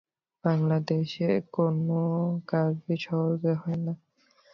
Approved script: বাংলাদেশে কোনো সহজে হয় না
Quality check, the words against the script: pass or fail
fail